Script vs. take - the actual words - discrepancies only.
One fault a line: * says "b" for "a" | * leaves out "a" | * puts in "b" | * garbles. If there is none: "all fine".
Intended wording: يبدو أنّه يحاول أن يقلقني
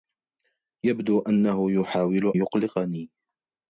* leaves out "أن"